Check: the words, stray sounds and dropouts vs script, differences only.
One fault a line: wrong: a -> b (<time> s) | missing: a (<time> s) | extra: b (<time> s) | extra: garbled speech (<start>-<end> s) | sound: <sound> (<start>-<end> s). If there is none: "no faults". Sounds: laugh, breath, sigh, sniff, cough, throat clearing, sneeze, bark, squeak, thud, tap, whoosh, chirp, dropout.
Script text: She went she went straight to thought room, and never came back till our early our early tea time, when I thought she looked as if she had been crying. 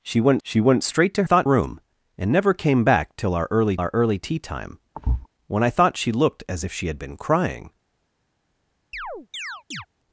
sound: thud (4.9-5.3 s)
sound: chirp (8.9-9.9 s)